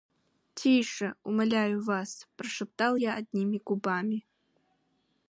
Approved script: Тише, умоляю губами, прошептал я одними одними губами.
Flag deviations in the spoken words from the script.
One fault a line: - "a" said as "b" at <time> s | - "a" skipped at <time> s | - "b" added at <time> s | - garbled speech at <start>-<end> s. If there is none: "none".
- "губами" said as "вас" at 1.8 s
- "одними" skipped at 3.6 s